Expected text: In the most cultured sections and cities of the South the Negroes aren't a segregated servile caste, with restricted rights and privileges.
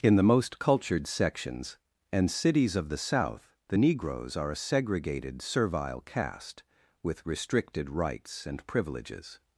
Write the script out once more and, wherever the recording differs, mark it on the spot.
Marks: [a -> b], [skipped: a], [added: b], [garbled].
In the most cultured sections and cities of the South the Negroes [aren't -> are] a segregated servile caste, with restricted rights and privileges.